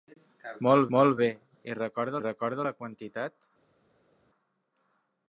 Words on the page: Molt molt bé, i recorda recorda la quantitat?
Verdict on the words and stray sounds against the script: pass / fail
pass